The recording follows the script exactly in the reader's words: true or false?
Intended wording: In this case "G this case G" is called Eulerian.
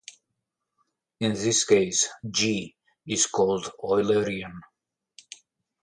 false